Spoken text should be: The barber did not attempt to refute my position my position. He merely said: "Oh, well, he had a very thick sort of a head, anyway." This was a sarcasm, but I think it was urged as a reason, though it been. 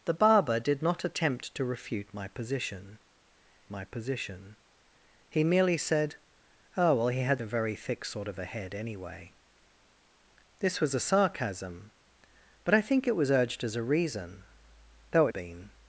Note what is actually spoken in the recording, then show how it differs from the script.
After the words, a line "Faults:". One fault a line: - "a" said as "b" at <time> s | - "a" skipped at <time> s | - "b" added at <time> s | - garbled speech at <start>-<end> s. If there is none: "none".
The barber did not attempt to refute my position my position. He merely said: "Oh, well, he had a very thick sort of a head, anyway." This was a sarcasm, but I think it was urged as a reason, though it been.
Faults:
none